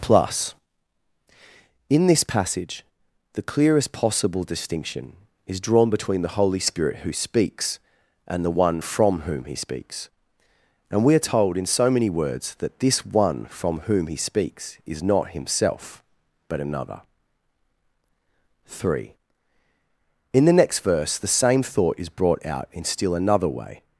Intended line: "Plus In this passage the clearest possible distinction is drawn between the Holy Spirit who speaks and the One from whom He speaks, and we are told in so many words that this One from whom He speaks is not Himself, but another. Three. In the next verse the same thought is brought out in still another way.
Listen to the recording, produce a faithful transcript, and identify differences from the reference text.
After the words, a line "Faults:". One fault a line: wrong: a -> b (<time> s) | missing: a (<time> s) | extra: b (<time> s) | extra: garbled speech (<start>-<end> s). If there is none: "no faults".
"Plus In this passage the clearest possible distinction is drawn between the Holy Spirit who speaks and the One from whom He speaks, and we are told in so many words that this One from whom He speaks is not Himself, but another. Three. In the next verse the same thought is brought out in still another way.
Faults:
no faults